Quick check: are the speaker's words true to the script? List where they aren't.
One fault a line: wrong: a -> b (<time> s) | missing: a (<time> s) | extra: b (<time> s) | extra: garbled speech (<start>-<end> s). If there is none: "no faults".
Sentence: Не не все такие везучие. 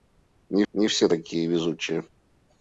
no faults